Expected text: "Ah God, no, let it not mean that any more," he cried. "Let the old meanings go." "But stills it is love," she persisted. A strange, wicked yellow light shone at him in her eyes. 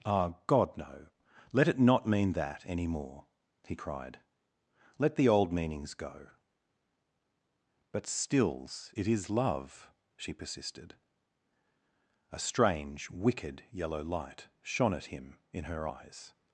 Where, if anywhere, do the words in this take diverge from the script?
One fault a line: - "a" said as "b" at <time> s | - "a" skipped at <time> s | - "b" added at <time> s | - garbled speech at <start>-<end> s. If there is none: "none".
none